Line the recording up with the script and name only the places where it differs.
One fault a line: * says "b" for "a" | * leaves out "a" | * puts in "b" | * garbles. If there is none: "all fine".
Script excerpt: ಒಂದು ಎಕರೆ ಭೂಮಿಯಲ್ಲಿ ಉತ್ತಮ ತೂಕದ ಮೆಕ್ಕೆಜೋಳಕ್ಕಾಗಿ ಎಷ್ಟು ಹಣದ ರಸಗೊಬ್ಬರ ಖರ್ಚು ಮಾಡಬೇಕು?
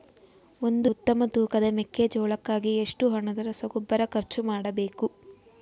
* leaves out "ಎಕರೆ ಭೂಮಿಯಲ್ಲಿ"